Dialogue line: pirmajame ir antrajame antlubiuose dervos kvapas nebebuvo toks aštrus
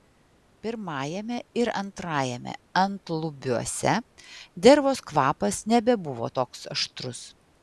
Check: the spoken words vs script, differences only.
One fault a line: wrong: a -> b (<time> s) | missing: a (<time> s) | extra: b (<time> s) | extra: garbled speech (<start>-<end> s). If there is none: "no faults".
no faults